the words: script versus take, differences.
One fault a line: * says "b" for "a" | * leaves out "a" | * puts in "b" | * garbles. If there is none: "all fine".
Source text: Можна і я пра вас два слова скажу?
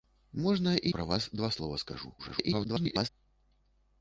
* leaves out "я"
* garbles